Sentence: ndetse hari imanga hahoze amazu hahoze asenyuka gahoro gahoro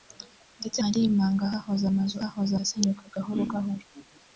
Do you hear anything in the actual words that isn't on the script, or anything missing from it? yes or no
no